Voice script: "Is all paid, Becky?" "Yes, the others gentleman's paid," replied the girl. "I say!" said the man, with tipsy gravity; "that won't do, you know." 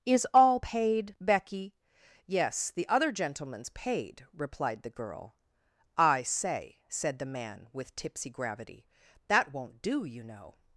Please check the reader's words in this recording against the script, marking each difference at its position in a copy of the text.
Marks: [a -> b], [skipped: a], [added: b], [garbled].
"Is all paid, Becky?" "Yes, the [others -> other] gentleman's paid," replied the girl. "I say!" said the man, with tipsy gravity; "that won't do, you know."